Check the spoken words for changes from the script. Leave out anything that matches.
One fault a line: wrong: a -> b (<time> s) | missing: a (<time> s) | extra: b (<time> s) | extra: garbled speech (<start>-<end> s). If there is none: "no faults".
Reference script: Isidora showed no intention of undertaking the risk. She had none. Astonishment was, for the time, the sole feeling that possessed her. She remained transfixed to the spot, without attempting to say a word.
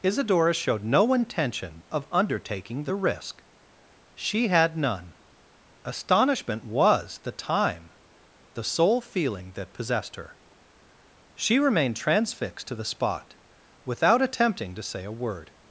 missing: for (7.2 s)